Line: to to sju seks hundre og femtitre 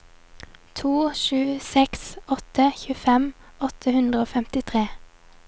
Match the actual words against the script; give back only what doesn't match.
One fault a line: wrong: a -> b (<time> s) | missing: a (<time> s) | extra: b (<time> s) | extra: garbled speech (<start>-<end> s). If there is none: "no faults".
missing: to (0.9 s)
extra: åtte tjuefem åtte (2.4 s)